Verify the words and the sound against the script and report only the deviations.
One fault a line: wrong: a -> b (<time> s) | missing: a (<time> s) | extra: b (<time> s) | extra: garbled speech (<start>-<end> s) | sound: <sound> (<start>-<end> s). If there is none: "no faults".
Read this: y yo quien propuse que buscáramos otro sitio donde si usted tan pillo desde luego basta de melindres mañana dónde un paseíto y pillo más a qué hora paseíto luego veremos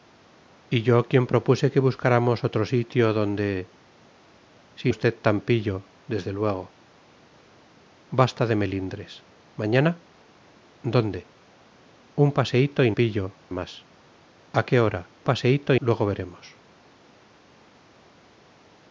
no faults